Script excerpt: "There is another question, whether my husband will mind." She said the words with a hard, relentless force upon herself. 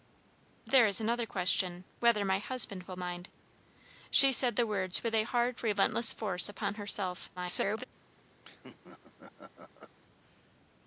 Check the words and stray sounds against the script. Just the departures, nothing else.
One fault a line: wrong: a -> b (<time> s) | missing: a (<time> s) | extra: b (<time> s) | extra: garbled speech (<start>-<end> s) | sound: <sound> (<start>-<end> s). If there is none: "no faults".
extra: garbled speech (7.4-7.8 s)
sound: laugh (8.4-10.0 s)